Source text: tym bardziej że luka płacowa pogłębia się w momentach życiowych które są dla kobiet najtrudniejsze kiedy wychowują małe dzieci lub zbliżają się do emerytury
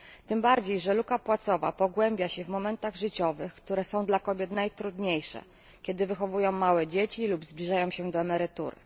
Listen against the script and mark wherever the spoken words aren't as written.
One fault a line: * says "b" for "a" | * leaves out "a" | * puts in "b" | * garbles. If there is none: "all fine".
all fine